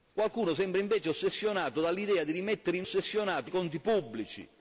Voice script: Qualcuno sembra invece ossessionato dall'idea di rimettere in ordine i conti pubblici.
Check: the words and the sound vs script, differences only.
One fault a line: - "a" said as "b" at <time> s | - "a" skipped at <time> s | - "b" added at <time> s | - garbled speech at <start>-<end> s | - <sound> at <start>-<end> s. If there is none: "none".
- "ordine" said as "ossessionato" at 2.8 s